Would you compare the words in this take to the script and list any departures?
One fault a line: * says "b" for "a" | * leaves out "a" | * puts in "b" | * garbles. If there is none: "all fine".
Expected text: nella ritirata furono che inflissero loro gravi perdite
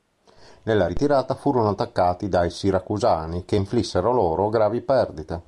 * puts in "attaccati dai siracusani"